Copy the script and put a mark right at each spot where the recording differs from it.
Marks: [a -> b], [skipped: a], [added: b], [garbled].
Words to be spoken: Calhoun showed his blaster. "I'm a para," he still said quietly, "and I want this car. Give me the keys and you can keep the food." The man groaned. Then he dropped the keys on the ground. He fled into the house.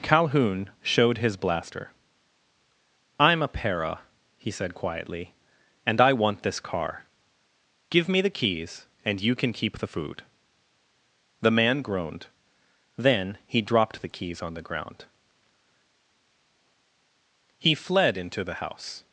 Calhoun showed his blaster. "I'm a para," he [skipped: still] said quietly, "and I want this car. Give me the keys and you can keep the food." The man groaned. Then he dropped the keys on the ground. He fled into the house.